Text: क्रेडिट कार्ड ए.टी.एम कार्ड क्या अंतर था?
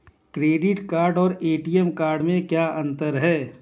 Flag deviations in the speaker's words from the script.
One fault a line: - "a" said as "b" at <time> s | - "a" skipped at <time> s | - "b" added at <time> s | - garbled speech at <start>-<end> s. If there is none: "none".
- "और" added at 1.2 s
- "में" added at 2.2 s
- "था" said as "है" at 3.2 s